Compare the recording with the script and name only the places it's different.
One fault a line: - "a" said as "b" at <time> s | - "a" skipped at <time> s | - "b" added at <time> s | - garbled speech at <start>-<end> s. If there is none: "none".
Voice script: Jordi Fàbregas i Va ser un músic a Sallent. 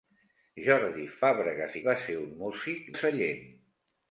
none